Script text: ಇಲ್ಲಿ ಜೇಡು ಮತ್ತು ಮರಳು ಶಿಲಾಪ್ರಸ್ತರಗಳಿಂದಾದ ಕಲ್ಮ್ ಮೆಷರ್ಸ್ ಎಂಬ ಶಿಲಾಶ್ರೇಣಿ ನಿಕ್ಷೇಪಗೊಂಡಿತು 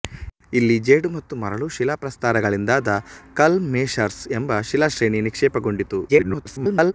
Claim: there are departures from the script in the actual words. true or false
true